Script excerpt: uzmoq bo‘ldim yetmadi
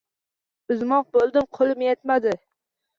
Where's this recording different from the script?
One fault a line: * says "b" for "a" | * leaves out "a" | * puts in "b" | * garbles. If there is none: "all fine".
* puts in "qo‘lim"